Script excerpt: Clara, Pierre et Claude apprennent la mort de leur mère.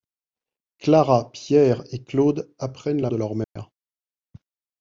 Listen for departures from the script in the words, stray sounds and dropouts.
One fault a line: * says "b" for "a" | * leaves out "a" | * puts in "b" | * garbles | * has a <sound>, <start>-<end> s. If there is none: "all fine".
* leaves out "mort"
* has a dropout, 3.4-3.6 s